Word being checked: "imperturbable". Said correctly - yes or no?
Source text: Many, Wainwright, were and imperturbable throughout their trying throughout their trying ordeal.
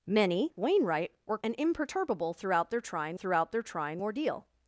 yes